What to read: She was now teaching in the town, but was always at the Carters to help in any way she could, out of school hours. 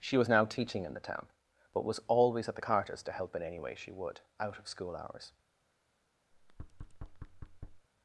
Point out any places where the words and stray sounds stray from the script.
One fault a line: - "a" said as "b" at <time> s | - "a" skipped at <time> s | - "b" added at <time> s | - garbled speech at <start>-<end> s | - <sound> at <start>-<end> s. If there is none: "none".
- "could" said as "would" at 3.9 s
- thud at 6.3-7.9 s